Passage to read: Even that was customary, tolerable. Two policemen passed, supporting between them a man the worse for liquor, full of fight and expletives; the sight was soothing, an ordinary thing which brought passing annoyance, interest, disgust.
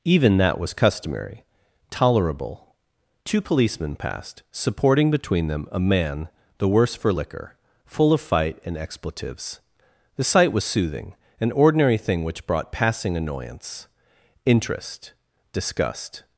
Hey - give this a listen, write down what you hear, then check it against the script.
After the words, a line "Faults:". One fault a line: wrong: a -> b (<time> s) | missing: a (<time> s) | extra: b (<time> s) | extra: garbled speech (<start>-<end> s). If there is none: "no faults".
Even that was customary, tolerable. Two policemen passed, supporting between them a man the worse for liquor, full of fight and expletives; the sight was soothing, an ordinary thing which brought passing annoyance, interest, disgust.
Faults:
no faults